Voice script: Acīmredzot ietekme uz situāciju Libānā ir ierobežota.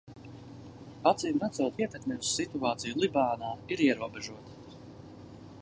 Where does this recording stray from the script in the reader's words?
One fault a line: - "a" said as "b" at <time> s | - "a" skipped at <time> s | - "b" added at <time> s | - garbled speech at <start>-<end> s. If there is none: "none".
none